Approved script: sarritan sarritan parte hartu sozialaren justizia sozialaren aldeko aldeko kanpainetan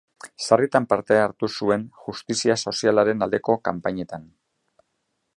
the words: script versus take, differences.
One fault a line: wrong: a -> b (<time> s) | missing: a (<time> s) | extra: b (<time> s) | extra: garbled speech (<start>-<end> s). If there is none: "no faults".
missing: sarritan (0.8 s)
wrong: sozialaren -> zuen (1.6 s)
missing: aldeko (3.6 s)